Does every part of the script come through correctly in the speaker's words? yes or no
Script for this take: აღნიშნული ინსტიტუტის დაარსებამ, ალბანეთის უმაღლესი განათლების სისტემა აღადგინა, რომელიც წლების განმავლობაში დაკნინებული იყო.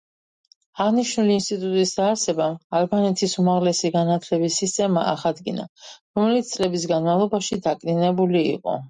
yes